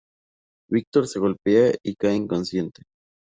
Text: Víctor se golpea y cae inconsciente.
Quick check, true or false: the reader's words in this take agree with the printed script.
true